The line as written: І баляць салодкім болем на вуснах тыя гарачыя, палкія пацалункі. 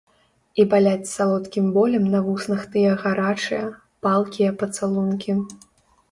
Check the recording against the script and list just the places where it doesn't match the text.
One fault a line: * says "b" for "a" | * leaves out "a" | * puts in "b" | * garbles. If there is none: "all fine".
all fine